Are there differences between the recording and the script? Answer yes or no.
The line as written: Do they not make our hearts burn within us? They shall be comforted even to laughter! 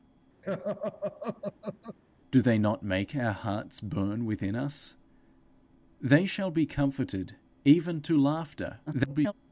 yes